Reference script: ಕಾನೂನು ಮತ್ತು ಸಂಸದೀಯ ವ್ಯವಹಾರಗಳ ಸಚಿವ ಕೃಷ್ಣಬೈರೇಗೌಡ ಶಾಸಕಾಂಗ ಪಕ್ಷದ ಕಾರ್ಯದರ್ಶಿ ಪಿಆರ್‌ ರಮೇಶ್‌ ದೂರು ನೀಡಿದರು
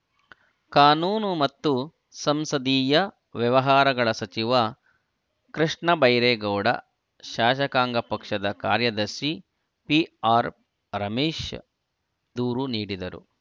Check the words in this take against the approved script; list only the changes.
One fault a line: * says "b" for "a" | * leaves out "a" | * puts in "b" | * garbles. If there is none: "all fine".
all fine